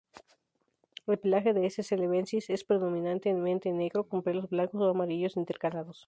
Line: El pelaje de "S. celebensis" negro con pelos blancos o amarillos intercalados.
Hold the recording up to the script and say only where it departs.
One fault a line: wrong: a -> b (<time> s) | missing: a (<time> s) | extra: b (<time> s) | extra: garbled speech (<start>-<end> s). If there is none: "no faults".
extra: es predominantemente (2.5 s)